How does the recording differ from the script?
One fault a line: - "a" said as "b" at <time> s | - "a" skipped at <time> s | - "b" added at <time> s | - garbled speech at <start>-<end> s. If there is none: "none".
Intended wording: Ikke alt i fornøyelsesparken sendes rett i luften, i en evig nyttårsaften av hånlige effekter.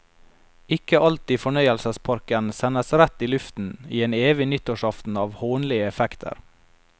none